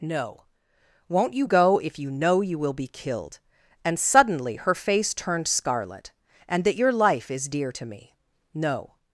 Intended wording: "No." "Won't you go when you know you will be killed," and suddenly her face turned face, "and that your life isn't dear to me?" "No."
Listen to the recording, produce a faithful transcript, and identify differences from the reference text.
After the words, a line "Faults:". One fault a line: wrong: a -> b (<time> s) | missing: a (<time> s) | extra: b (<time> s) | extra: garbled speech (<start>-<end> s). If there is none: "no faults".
"No." "Won't you go if you know you will be killed," and suddenly her face turned scarlet, "and that your life is dear to me?" "No."
Faults:
wrong: when -> if (1.8 s)
wrong: face -> scarlet (5.5 s)
wrong: isn't -> is (7.3 s)